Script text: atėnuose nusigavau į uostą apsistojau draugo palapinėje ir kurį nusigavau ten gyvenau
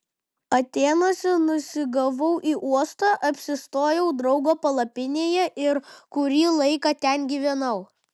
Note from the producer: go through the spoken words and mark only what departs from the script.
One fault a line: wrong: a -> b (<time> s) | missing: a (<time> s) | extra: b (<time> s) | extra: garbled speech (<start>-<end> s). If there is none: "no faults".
wrong: nusigavau -> laiką (6.6 s)